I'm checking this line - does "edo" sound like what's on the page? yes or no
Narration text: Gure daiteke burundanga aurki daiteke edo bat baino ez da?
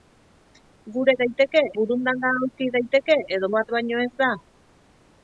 yes